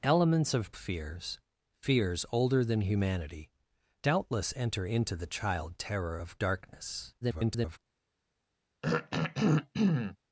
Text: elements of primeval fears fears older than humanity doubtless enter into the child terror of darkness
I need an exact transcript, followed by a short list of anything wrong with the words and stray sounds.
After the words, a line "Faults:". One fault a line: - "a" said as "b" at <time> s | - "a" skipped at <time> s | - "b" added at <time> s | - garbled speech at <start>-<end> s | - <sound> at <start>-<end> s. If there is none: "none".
elements of fears fears older than humanity doubtless enter into the child terror of darkness [garbled]
Faults:
- "primeval" skipped at 0.7 s
- garbled speech at 7.2-7.8 s
- throat clearing at 8.8-10.2 s